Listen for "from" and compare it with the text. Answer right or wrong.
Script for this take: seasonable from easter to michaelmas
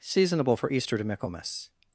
wrong